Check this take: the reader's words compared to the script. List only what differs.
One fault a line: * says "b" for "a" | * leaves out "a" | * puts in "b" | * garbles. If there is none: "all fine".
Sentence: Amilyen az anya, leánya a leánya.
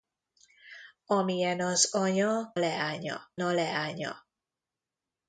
all fine